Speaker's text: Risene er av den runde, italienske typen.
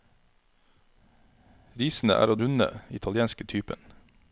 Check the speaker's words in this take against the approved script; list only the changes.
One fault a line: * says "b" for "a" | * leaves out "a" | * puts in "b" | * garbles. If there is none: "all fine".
* leaves out "den"